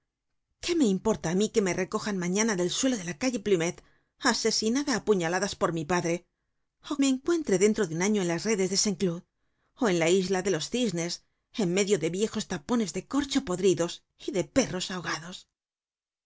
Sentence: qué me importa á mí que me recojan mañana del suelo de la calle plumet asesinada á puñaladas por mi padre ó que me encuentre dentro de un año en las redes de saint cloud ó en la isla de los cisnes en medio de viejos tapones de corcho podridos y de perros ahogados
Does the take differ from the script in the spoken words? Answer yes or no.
yes